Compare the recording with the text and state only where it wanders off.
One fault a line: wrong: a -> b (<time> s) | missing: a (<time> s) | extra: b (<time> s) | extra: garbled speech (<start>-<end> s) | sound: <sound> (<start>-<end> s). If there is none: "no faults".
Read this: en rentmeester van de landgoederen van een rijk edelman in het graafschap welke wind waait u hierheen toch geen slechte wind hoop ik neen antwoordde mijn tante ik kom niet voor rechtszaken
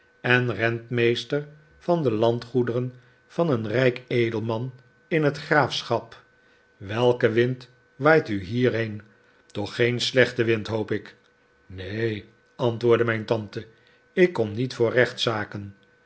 no faults